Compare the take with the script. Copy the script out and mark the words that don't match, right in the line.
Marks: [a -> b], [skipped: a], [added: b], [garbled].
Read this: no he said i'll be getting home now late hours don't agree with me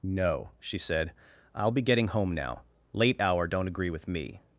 no [he -> she] said i'll be getting home now late [hours -> hour] don't agree with me